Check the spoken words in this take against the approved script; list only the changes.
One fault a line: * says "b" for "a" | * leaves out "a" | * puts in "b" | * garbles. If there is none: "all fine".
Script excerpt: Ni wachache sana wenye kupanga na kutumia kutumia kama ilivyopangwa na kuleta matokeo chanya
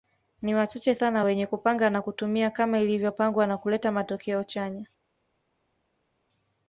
* leaves out "kutumia"